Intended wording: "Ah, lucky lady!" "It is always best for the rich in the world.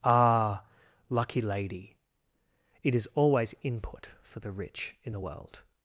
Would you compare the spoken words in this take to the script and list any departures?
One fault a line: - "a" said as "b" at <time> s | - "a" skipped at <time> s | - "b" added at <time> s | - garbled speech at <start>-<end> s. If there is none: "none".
- "best" said as "input" at 3.6 s